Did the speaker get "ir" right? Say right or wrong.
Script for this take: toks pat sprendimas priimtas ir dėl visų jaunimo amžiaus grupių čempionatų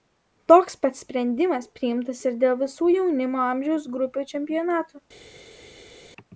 right